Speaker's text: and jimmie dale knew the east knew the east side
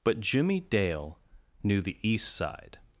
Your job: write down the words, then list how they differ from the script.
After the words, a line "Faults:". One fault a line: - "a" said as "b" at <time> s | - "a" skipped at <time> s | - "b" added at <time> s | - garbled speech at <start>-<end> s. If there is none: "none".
but jimmie dale knew the east side
Faults:
- "and" said as "but" at 0.0 s
- "knew the east" skipped at 2.4 s